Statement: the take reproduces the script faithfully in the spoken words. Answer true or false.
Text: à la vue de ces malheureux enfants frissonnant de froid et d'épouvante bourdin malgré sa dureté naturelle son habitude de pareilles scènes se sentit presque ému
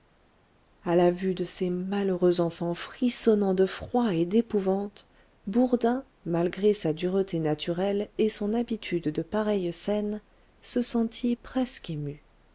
false